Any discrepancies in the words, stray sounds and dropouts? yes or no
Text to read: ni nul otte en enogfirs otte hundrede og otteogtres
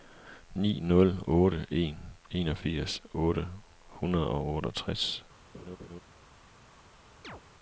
yes